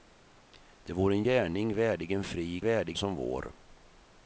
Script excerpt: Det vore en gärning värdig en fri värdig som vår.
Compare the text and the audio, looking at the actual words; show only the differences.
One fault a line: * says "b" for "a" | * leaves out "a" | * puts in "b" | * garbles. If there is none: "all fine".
all fine